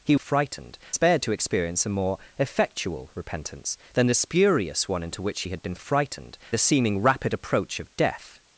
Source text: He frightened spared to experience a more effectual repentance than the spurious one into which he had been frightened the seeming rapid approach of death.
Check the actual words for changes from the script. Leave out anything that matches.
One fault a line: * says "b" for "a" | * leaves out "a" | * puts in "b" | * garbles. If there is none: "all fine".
all fine